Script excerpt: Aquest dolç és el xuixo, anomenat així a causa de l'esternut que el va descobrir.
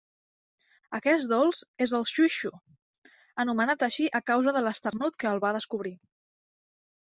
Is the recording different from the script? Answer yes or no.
no